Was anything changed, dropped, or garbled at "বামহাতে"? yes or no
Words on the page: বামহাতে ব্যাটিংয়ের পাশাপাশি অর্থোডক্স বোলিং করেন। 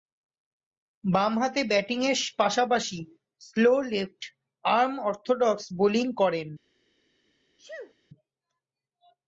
no